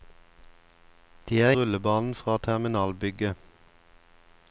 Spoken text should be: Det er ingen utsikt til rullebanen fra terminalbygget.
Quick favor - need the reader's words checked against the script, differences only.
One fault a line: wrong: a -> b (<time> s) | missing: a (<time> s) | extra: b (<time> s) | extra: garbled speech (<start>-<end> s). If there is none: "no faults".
missing: ingen utsikt til (1.5 s)